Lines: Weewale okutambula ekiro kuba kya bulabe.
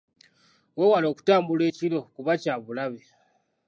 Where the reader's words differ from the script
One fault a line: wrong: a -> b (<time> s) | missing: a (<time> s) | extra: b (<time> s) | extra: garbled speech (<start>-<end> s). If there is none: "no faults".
no faults